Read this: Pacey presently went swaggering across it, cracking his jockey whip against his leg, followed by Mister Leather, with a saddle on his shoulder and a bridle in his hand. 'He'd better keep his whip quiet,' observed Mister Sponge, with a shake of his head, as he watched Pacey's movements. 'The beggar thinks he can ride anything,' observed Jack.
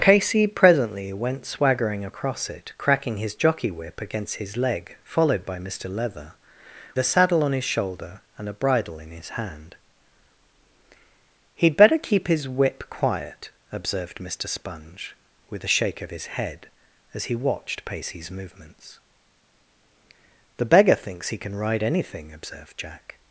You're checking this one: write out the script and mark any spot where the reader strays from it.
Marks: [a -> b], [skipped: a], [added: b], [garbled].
Pacey presently went swaggering across it, cracking his jockey whip against his leg, followed by Mister Leather, [skipped: with] a saddle on his shoulder and a bridle in his hand. 'He'd better keep his whip quiet,' observed Mister Sponge, with a shake of his head, as he watched Pacey's movements. 'The beggar thinks he can ride anything,' observed Jack.